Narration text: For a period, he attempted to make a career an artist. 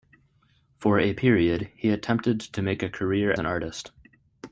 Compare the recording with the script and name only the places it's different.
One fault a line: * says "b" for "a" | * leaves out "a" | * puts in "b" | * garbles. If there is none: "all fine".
all fine